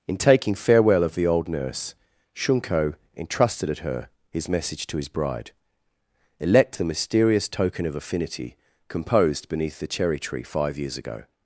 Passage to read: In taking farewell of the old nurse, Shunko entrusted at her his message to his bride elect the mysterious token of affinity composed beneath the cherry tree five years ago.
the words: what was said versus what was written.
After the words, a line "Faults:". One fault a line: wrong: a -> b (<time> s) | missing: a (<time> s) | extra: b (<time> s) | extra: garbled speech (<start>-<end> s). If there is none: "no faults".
In taking farewell of the old nurse, Shunko entrusted at her his message to his bride elect the mysterious token of affinity composed beneath the cherry tree five years ago.
Faults:
no faults